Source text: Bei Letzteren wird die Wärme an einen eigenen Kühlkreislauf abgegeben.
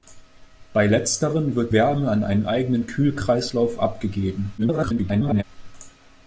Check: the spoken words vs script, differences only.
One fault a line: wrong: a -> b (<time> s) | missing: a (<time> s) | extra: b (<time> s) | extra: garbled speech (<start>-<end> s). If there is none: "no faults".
missing: die (1.8 s)
extra: garbled speech (4.6-5.4 s)